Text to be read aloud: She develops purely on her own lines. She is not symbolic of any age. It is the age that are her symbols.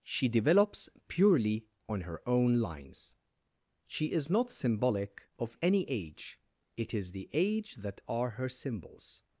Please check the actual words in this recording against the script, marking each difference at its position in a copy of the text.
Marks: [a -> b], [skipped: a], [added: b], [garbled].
She develops purely on her own lines. She is not symbolic of any age. It is the age that are her symbols.